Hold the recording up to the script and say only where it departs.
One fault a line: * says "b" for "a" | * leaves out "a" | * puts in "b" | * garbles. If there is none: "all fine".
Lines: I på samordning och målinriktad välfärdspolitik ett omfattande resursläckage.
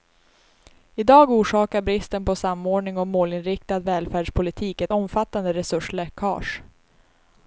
* puts in "dag orsakar bristen"